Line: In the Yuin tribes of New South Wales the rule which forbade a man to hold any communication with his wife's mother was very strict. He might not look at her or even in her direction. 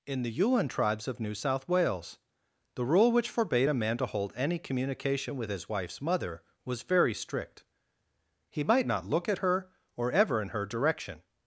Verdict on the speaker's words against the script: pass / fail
fail